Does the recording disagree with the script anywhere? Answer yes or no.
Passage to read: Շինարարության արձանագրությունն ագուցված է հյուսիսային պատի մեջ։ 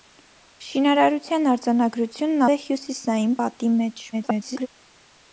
yes